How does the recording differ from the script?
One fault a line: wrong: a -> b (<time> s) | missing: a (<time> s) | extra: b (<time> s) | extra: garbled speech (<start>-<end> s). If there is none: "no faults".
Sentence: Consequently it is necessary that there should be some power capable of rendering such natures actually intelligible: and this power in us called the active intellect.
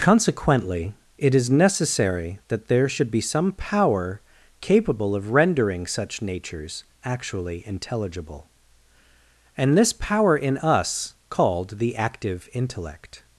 no faults